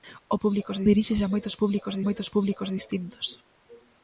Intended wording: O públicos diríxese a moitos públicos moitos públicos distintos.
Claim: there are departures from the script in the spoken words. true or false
false